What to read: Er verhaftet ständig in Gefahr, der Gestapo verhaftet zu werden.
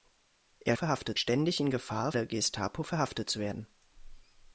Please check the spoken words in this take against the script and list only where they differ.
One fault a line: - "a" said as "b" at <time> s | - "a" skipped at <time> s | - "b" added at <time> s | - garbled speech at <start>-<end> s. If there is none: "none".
none